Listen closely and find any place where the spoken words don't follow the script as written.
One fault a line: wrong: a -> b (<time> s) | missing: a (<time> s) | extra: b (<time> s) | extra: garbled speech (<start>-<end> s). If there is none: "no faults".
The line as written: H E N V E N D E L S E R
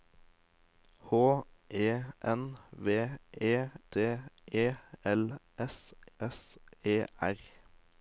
missing: N (3.7 s)
extra: S (6.2 s)